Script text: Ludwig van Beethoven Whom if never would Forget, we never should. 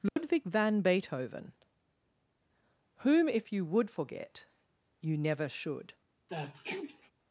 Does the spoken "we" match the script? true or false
false